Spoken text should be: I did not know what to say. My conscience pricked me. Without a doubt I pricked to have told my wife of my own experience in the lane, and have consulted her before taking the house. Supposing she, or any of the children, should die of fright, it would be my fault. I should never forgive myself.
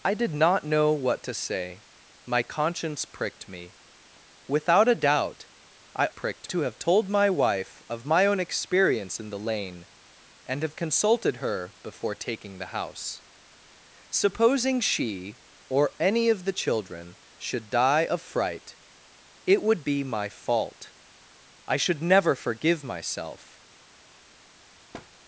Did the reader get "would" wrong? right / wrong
right